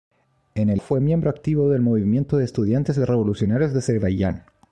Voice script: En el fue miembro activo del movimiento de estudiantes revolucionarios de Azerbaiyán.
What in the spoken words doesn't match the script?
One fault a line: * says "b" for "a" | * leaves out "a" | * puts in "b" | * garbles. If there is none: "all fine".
all fine